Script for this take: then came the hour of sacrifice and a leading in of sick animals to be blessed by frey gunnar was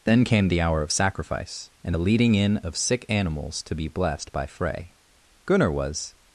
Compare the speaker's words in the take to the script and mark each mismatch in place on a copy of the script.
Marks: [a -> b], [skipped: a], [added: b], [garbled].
then came the hour of sacrifice and a leading in of sick animals to be blessed by frey gunnar was